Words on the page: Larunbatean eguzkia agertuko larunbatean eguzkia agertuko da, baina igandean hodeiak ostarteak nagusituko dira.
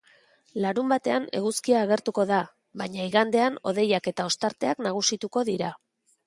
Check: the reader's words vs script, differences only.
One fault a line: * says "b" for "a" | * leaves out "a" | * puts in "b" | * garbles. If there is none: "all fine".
* leaves out "larunbatean eguzkia agertuko"
* puts in "eta"